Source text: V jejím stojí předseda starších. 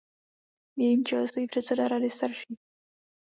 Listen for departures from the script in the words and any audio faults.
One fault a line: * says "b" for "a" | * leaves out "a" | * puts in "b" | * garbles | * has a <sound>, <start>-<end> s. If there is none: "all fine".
* puts in "čele"
* puts in "rady"